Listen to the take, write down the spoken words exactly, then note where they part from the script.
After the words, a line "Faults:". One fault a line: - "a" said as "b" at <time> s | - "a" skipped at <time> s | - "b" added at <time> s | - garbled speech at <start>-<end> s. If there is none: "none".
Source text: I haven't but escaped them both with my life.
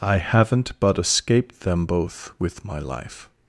I haven't but escaped them both with my life.
Faults:
none